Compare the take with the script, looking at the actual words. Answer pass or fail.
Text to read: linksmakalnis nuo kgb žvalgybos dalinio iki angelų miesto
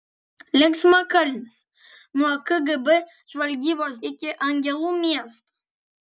fail